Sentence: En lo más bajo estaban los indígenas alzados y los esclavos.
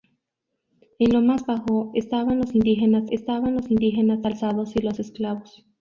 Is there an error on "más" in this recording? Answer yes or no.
no